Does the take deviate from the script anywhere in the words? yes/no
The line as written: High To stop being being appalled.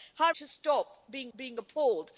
no